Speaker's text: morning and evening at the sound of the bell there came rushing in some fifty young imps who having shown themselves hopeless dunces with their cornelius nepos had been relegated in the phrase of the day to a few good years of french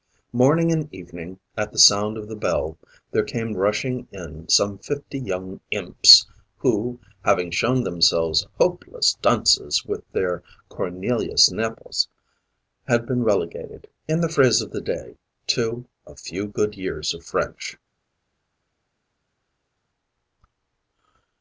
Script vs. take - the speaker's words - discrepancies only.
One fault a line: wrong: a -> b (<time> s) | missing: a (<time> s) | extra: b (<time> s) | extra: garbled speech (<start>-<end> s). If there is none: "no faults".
no faults